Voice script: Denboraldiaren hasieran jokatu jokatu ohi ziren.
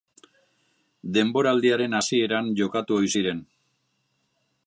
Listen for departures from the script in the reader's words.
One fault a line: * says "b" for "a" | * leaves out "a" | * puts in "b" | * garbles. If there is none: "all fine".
* leaves out "jokatu"